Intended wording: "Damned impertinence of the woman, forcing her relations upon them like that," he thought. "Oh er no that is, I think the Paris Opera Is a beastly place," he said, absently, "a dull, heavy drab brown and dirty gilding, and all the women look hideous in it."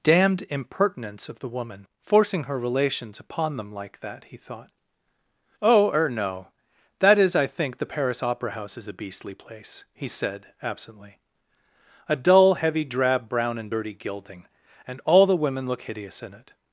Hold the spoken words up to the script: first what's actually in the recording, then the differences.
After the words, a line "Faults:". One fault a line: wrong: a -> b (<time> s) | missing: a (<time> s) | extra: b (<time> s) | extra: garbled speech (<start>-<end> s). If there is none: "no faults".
"Damned impertinence of the woman, forcing her relations upon them like that," he thought. "Oh er no that is, I think the Paris Opera House is a beastly place," he said, absently, "a dull, heavy drab brown and dirty gilding, and all the women look hideous in it."
Faults:
extra: House (8.5 s)